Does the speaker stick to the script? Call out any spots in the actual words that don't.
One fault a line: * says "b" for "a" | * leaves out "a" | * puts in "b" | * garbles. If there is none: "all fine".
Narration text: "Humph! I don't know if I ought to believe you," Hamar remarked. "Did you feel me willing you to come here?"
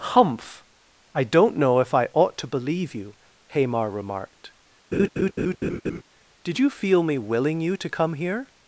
all fine